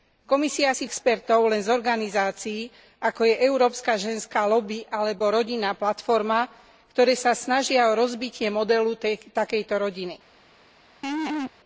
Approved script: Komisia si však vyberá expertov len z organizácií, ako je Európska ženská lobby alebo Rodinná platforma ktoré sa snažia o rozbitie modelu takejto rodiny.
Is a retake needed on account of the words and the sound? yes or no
yes